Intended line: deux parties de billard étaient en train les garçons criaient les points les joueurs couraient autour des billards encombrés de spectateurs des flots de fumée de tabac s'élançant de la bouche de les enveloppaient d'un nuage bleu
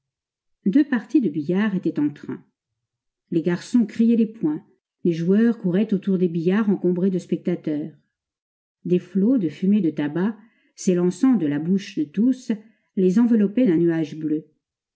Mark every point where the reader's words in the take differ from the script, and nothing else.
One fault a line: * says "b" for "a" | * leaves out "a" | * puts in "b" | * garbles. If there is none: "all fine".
* puts in "tous"